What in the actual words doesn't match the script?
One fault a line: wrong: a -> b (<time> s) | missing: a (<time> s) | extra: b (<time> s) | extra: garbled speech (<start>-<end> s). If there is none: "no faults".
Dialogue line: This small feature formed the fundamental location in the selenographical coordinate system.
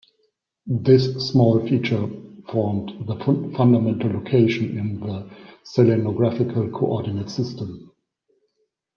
no faults